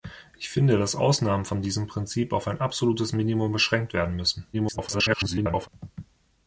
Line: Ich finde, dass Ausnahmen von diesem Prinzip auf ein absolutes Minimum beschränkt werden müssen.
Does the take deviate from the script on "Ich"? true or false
false